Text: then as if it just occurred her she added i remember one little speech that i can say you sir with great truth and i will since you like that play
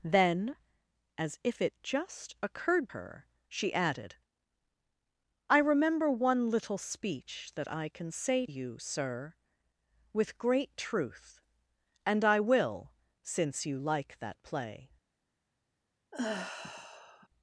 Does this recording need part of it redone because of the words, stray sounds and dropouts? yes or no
yes